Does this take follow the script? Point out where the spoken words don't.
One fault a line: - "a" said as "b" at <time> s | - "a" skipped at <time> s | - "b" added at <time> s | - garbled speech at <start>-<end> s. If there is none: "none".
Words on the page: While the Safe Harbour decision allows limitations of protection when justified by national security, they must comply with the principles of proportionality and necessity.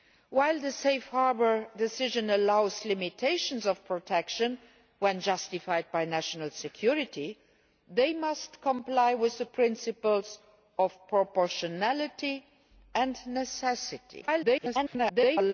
- garbled speech at 14.2-15.5 s